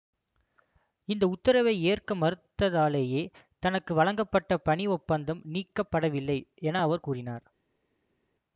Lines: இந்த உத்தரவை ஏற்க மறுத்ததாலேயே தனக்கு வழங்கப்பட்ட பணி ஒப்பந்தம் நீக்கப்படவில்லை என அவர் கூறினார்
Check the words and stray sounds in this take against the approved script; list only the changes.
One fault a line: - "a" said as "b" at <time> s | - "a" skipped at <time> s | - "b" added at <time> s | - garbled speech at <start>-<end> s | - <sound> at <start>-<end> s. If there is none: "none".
none